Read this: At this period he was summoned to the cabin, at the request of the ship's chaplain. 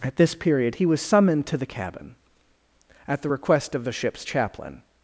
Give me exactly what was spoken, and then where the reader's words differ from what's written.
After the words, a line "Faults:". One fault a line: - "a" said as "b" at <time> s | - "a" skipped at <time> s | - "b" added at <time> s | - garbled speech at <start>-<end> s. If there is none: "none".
At this period he was summoned to the cabin, at the request of the ship's chaplain.
Faults:
none